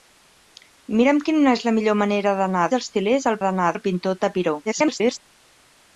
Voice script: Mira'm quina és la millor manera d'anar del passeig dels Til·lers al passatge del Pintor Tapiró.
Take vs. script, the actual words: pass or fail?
fail